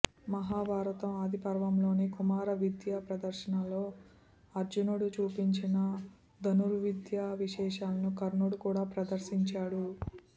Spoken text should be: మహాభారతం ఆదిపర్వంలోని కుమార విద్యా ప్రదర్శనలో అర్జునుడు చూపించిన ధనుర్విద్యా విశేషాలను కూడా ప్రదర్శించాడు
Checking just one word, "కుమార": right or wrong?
right